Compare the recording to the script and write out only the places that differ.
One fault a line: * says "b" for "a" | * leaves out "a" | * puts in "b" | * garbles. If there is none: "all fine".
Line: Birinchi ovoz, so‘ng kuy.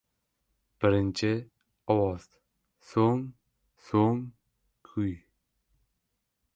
* puts in "so‘ng"